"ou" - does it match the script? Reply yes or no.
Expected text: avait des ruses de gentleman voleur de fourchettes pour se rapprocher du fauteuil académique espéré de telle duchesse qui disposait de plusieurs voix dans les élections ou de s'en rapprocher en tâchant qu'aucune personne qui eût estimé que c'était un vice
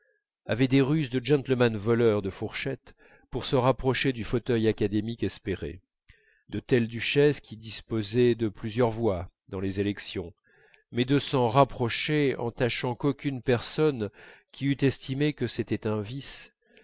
no